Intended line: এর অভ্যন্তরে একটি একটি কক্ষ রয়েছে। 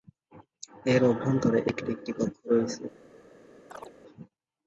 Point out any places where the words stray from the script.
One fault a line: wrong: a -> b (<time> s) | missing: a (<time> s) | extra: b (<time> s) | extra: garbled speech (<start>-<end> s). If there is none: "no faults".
no faults